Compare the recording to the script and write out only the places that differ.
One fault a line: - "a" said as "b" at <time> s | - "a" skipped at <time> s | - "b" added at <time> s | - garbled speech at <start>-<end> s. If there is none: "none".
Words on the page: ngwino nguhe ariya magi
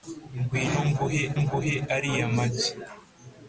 - "nguhe" added at 1.4 s